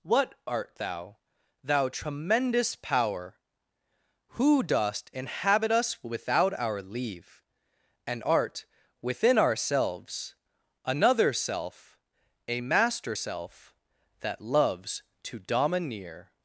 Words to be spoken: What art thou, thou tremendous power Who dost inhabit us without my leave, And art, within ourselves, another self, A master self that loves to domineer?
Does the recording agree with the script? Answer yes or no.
no